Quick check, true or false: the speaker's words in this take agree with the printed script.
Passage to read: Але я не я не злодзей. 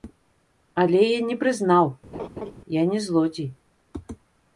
false